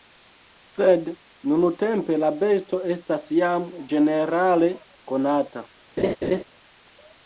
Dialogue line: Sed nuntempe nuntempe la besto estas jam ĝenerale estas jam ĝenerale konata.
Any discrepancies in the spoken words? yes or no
yes